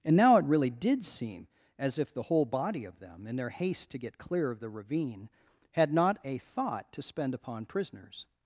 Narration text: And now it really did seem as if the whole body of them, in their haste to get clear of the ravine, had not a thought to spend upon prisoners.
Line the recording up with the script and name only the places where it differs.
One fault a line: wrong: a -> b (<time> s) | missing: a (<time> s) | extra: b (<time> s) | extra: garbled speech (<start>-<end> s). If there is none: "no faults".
no faults